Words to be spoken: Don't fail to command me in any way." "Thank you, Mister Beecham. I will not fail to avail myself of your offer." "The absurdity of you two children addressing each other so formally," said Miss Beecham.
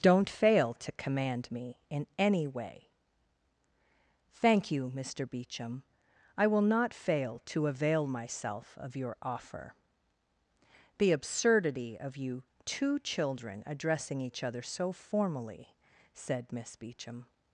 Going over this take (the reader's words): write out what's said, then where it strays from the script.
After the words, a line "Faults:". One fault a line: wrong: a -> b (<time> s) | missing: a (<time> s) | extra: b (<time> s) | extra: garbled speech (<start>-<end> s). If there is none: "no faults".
Don't fail to command me in any way." "Thank you, Mister Beecham. I will not fail to avail myself of your offer." "The absurdity of you two children addressing each other so formally," said Miss Beecham.
Faults:
no faults